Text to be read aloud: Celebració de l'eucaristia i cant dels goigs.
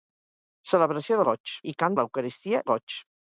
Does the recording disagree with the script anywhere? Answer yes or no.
yes